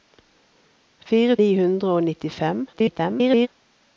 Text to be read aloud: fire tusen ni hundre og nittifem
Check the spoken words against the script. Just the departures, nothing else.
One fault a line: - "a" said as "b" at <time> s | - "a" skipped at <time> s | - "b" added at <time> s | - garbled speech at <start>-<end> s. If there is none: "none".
- "tusen" skipped at 1.4 s
- garbled speech at 2.7-3.5 s